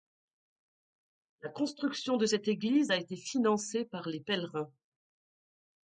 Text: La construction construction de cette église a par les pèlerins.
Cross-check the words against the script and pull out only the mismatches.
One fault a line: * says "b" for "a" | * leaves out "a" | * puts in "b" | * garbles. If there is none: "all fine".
* leaves out "construction"
* puts in "été financée"